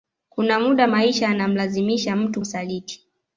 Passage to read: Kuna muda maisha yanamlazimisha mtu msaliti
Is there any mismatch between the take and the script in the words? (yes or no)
no